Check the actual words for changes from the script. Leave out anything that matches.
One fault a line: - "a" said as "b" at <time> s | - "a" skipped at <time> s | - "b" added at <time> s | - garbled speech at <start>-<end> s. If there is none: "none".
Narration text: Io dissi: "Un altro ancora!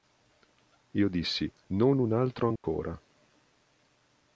- "Non" added at 1.7 s